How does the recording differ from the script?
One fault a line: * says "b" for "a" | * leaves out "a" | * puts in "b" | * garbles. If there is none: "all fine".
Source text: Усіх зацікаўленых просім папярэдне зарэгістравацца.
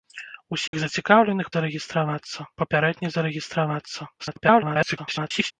* says "зарэгістравацца" for "просім"
* garbles